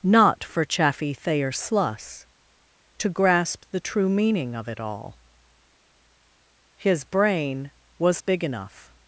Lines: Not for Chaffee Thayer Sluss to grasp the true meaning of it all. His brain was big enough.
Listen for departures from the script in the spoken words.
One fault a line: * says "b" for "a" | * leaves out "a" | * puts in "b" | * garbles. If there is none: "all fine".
all fine